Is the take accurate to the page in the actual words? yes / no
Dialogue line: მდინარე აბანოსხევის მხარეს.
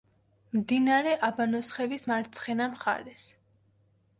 no